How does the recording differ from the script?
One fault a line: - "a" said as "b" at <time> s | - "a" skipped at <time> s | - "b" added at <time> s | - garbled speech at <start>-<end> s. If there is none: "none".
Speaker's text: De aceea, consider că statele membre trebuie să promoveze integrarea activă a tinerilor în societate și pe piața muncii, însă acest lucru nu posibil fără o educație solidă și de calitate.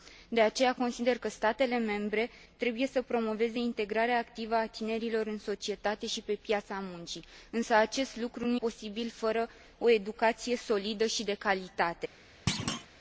none